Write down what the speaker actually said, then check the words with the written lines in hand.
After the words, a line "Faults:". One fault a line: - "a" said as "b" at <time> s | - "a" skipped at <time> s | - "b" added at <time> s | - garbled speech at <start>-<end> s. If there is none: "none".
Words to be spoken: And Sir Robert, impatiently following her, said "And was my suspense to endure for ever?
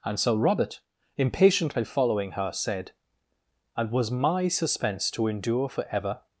And Sir Robert, impatiently following her, said "And was my suspense to endure for ever?
Faults:
none